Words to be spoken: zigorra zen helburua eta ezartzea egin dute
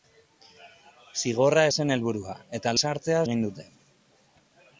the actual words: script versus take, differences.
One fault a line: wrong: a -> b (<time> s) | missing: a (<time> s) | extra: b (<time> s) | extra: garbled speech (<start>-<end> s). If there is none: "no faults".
no faults